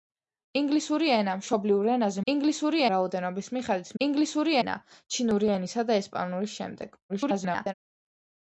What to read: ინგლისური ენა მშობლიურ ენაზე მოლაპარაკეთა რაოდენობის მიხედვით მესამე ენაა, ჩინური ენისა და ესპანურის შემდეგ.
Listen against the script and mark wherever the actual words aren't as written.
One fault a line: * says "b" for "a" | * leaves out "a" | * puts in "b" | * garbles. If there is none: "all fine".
* says "ინგლისური" for "მოლაპარაკეთა"
* says "ინგლისური" for "მესამე"
* garbles